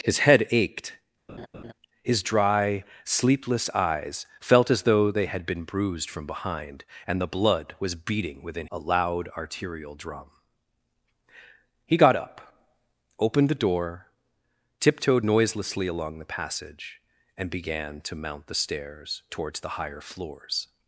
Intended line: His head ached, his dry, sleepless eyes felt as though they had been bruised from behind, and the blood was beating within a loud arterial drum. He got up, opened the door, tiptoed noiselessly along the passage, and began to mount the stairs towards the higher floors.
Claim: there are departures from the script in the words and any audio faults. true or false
true